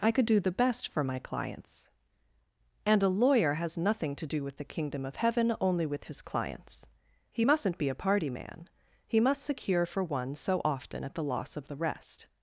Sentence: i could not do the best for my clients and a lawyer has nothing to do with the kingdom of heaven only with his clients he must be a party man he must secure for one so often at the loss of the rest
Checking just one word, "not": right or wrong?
wrong